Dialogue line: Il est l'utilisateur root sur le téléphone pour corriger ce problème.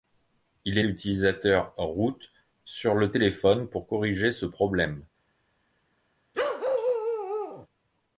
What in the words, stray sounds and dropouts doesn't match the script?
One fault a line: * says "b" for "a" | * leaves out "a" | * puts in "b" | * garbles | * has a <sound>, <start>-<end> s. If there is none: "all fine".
* has a bark, 6.3-7.7 s